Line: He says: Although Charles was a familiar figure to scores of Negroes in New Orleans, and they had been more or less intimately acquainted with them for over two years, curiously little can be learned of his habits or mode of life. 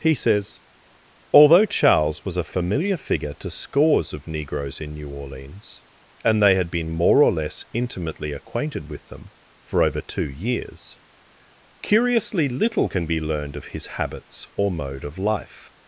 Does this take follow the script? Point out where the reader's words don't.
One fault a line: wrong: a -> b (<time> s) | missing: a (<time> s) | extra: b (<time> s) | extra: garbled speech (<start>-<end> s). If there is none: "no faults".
no faults